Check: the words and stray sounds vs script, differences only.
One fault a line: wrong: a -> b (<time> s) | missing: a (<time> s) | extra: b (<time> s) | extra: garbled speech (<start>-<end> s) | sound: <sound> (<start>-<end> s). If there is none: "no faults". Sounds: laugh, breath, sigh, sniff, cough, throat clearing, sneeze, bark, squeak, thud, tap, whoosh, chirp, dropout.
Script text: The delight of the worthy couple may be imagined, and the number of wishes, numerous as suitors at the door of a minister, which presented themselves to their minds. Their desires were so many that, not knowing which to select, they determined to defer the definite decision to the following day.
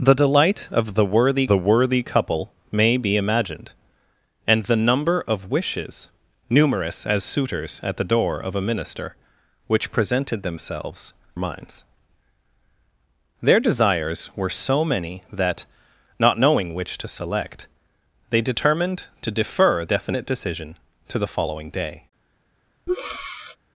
extra: the worthy (1.5 s)
missing: to their (11.1 s)
missing: the (19.9 s)
sound: breath (22.9-23.6 s)